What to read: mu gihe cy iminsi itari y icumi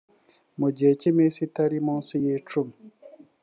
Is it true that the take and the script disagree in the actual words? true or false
true